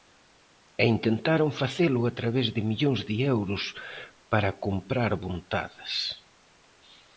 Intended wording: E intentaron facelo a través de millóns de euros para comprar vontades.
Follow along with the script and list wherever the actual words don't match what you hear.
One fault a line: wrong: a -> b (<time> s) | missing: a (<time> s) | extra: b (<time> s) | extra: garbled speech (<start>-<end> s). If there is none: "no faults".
no faults